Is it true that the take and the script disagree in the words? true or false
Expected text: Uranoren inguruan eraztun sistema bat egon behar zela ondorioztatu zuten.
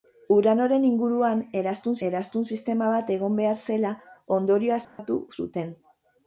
true